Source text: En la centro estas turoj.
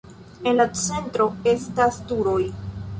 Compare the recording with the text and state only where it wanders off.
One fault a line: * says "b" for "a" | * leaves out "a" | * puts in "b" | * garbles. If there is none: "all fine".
all fine